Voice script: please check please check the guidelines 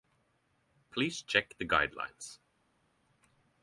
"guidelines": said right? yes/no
yes